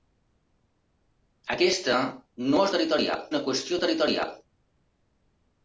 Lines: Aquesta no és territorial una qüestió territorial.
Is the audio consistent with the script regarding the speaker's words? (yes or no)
yes